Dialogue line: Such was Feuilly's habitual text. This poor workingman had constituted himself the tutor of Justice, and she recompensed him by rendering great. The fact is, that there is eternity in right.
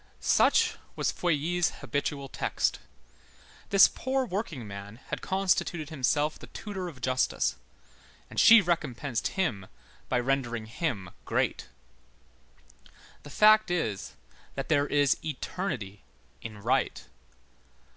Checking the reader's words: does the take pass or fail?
fail